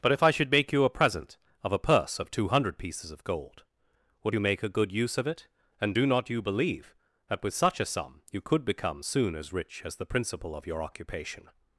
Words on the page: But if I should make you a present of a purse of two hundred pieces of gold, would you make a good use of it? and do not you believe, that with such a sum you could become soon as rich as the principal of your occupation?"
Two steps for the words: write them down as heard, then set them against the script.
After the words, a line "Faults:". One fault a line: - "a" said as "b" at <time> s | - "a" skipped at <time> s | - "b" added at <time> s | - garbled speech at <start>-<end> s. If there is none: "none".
But if I should make you a present of a purse of two hundred pieces of gold, would you make a good use of it? and do not you believe, that with such a sum you could become soon as rich as the principal of your occupation?"
Faults:
none